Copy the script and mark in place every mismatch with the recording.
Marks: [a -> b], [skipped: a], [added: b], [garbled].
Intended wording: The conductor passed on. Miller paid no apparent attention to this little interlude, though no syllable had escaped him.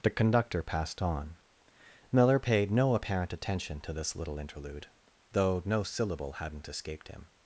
The conductor passed on. Miller paid no apparent attention to this little interlude, though no syllable [had -> hadn't] escaped him.